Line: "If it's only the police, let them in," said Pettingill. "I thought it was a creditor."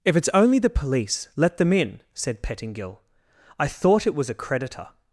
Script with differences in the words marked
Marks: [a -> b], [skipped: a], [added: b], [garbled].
"If it's only the police, let them in," said Pettingill. "I thought it was a creditor."